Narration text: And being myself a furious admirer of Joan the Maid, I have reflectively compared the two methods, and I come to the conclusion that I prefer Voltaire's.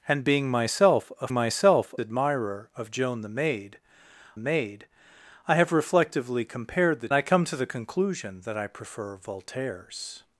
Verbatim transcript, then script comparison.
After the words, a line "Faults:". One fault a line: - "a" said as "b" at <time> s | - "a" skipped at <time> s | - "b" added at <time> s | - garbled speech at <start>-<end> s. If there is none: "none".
And being myself a myself admirer of Joan the Maid Maid, I have reflectively compared the I come to the conclusion that I prefer Voltaire's.
Faults:
- "furious" said as "myself" at 1.3 s
- "Maid" added at 4.4 s
- "two methods and" skipped at 7.1 s